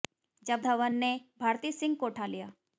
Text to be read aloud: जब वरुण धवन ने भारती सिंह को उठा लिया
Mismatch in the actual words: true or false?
true